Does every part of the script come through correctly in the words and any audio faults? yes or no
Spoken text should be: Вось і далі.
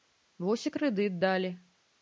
no